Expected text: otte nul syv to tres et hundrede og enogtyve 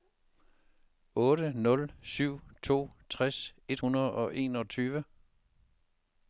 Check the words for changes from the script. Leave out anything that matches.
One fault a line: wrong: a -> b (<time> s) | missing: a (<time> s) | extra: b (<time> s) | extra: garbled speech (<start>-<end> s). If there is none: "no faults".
no faults